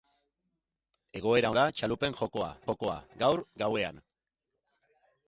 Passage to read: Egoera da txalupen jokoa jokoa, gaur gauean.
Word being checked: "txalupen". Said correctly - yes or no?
yes